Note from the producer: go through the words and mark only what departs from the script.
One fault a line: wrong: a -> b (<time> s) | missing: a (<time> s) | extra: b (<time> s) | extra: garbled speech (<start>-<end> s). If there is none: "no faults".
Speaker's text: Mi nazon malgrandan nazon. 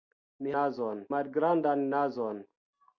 no faults